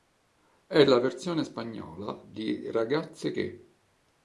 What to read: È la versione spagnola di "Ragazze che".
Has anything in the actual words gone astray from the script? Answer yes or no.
no